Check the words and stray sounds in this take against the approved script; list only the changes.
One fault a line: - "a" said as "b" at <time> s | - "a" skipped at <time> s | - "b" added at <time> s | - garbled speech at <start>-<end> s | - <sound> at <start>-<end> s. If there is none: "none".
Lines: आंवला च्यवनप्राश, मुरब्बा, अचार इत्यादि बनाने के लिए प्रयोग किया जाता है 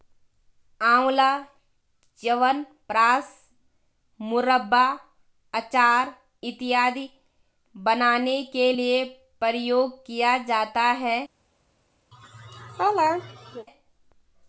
- laugh at 12.1-13.7 s